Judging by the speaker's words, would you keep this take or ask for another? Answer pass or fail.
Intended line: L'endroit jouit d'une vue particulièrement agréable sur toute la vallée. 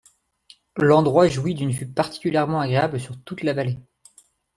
pass